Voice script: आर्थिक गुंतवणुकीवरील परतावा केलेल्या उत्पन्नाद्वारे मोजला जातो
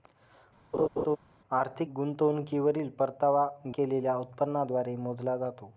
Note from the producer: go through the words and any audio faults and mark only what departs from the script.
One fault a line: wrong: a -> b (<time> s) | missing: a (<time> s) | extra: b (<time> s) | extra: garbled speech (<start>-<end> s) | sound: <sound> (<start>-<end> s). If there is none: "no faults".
sound: laugh (0.7-1.2 s)